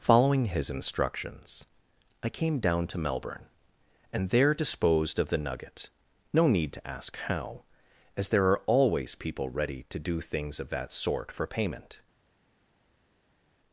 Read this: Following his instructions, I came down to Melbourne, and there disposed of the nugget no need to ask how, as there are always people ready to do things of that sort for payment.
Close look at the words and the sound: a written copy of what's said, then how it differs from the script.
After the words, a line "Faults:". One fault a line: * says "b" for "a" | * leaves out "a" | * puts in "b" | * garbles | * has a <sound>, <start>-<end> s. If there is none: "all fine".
Following his instructions, I came down to Melbourne, and there disposed of the nugget no need to ask how, as there are always people ready to do things of that sort for payment.
Faults:
all fine